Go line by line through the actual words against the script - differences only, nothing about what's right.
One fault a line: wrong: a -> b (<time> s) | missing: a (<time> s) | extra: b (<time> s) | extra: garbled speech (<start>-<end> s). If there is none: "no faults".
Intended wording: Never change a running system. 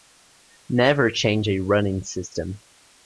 no faults